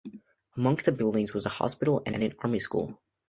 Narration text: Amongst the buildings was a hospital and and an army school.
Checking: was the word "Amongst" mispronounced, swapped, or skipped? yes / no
no